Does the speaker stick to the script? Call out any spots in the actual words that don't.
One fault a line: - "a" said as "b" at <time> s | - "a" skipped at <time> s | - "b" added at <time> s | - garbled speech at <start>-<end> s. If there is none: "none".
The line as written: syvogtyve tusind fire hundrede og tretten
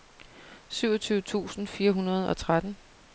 none